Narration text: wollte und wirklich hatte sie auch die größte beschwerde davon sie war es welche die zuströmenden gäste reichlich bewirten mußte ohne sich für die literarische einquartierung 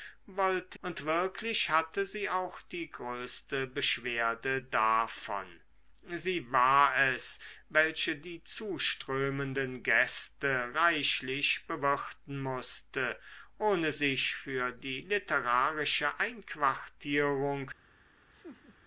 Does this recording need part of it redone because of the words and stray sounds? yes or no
yes